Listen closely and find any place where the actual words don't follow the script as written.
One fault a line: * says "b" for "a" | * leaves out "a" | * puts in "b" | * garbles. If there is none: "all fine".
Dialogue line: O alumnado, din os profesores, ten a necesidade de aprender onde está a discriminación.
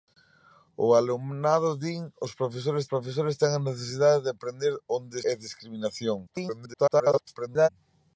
* puts in "profesores"
* leaves out "está"
* garbles